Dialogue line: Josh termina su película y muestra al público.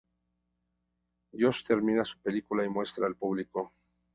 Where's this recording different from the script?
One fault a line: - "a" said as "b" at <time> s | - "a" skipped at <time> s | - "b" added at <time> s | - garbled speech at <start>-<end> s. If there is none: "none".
none